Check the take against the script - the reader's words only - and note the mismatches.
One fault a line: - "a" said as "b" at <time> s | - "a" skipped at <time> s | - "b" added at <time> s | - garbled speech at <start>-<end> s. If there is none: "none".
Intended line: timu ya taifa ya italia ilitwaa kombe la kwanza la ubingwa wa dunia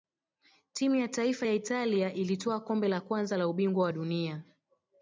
none